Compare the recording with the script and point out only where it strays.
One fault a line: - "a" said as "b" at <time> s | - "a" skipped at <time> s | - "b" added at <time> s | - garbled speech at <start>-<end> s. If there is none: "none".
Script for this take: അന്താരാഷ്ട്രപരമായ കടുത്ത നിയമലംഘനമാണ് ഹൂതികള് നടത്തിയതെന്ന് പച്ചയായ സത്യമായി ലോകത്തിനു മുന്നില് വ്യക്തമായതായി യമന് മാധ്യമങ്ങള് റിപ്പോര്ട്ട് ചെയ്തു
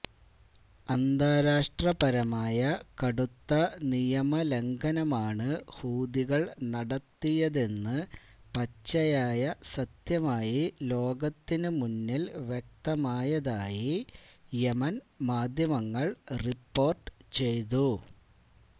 none